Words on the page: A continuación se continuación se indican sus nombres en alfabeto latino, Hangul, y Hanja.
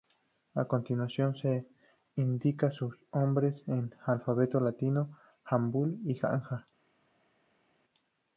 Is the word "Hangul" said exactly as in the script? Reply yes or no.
yes